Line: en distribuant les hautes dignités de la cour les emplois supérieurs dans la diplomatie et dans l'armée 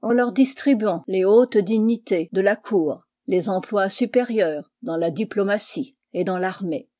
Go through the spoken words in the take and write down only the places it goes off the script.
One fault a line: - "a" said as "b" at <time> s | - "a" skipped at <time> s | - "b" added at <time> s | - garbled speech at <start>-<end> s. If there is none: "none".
- "leur" added at 0.1 s